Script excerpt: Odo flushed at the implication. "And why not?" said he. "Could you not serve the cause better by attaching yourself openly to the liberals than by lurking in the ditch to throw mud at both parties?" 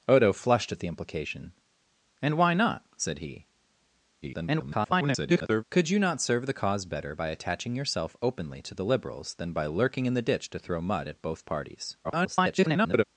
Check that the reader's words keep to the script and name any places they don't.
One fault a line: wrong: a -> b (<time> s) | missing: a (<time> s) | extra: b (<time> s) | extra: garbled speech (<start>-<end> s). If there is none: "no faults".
extra: garbled speech (4.2-5.6 s)
extra: garbled speech (12.0-13.0 s)